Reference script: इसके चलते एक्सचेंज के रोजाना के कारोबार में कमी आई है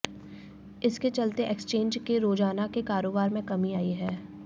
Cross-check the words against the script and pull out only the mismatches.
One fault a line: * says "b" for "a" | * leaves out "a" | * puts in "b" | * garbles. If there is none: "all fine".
all fine